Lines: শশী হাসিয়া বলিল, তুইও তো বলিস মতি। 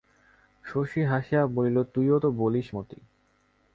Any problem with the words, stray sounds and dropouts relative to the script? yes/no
no